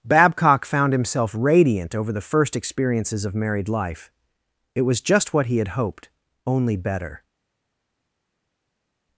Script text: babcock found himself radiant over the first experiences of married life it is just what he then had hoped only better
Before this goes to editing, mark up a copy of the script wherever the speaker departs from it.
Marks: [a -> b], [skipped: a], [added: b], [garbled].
babcock found himself radiant over the first experiences of married life it [is -> was] just what he [skipped: then] had hoped only better